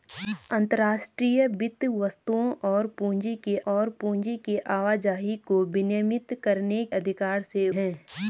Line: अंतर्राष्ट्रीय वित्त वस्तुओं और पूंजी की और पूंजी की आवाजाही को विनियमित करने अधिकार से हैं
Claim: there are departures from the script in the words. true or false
false